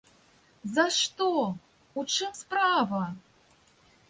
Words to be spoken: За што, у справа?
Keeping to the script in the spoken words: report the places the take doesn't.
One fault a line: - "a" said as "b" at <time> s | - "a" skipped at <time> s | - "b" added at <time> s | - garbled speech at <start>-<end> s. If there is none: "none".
- "чым" added at 2.1 s